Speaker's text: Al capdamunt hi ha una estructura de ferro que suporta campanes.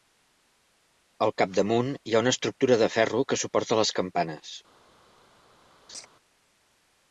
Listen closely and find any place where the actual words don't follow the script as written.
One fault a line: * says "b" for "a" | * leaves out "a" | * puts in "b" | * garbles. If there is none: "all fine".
* puts in "les"